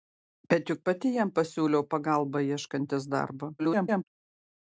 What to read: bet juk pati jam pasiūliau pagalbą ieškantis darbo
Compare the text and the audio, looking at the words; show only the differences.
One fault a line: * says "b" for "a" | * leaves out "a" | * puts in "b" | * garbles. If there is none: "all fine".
* garbles